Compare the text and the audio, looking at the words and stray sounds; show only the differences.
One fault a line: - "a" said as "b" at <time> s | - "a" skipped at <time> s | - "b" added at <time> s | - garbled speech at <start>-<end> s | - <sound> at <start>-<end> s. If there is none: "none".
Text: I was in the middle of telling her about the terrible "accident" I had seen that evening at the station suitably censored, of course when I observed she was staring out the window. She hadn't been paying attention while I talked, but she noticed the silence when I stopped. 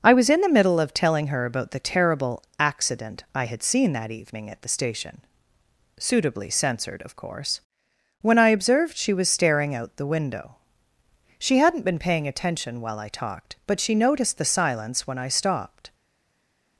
none